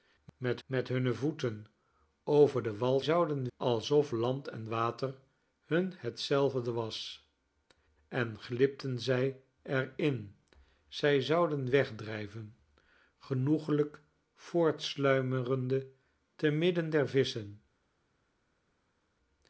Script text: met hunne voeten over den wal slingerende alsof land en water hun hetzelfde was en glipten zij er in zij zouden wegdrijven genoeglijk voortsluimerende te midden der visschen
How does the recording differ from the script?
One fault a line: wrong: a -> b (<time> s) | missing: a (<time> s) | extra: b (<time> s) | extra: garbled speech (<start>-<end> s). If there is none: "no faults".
extra: met (0.7 s)
wrong: slingerende -> zouden (3.0 s)